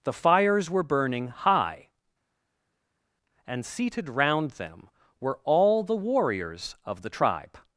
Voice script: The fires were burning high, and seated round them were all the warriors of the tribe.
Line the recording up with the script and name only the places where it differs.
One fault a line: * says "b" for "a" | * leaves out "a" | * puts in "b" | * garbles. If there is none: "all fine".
all fine